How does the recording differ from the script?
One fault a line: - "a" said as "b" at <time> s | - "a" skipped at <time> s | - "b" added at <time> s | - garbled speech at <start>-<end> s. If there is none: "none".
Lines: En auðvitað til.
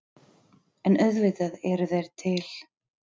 - "eru þeir" added at 1.7 s